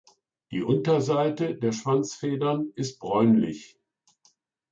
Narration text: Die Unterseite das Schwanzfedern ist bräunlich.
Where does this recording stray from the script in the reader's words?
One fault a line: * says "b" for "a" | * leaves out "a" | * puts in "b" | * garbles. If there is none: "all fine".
* says "der" for "das"